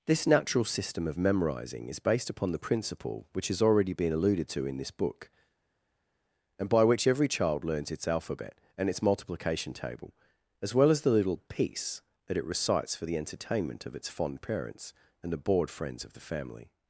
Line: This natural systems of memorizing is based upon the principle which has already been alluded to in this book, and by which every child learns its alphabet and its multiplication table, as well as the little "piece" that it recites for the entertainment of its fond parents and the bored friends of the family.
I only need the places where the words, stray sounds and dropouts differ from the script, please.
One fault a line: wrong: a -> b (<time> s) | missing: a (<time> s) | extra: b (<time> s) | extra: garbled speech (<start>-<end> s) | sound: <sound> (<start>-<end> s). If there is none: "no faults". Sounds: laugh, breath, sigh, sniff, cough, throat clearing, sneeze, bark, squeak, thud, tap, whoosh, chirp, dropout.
wrong: systems -> system (0.7 s)